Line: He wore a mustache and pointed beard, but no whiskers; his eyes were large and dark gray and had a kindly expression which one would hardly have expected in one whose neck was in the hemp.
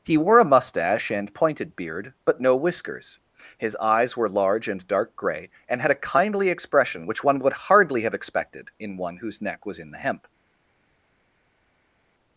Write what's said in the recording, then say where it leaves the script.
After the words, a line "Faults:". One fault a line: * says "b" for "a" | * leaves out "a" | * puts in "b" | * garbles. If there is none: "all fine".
He wore a mustache and pointed beard, but no whiskers; his eyes were large and dark gray and had a kindly expression which one would hardly have expected in one whose neck was in the hemp.
Faults:
all fine